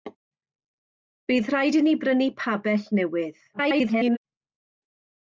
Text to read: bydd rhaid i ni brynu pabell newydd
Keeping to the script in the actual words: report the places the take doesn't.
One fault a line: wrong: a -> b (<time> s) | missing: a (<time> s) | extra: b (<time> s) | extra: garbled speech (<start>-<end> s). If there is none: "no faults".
extra: garbled speech (3.5-4.2 s)